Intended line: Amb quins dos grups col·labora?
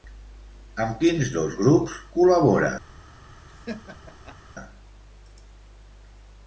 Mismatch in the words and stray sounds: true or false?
true